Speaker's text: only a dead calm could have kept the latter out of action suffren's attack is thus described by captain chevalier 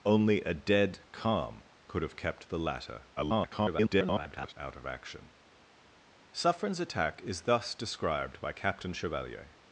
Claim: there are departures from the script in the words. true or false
true